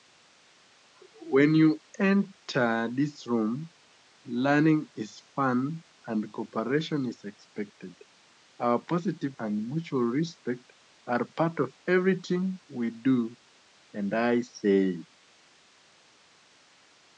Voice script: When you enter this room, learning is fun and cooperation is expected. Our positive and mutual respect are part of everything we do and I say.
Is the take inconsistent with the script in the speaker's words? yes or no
no